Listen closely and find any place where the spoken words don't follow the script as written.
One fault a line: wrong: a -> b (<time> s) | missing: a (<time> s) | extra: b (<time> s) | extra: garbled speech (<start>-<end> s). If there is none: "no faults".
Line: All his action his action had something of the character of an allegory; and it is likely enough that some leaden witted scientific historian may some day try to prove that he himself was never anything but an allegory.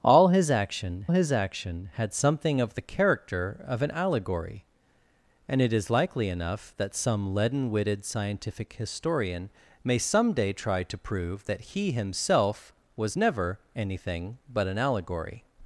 no faults